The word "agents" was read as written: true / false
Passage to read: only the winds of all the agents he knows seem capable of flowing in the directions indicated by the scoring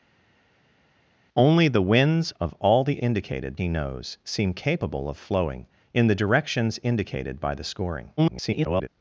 false